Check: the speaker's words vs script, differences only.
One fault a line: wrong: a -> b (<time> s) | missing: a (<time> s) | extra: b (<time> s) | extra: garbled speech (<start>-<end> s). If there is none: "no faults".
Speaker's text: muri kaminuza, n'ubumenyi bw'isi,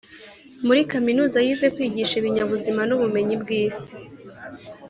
extra: yize kwigisha ibinyabuzima (1.4 s)